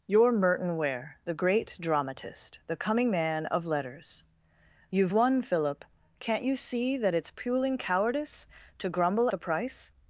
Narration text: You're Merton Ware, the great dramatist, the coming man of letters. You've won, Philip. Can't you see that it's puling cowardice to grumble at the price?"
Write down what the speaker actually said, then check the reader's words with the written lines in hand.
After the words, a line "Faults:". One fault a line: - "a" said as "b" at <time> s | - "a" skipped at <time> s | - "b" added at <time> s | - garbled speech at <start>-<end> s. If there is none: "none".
You're Merton Ware, the great dramatist, the coming man of letters. You've won, Philip. Can't you see that it's puling cowardice to grumble the price?"
Faults:
- "at" skipped at 9.3 s